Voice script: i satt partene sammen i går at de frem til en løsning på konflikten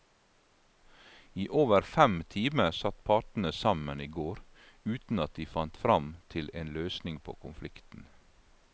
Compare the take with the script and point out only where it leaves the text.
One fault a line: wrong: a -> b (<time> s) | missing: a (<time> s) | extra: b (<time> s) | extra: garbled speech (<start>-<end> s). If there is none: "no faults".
extra: over fem timer (1.5 s)
extra: uten (5.0 s)
extra: fant (5.5 s)